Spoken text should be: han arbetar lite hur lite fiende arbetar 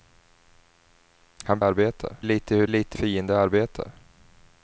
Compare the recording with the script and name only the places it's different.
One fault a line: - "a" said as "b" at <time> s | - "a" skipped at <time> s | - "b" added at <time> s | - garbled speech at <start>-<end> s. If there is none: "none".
none